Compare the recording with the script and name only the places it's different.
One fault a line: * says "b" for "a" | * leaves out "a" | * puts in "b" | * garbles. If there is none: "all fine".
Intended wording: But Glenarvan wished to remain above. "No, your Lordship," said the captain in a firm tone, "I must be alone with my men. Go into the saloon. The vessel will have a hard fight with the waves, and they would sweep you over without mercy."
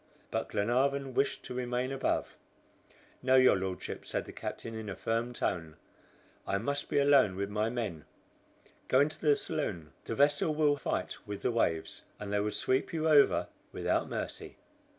* leaves out "have a hard"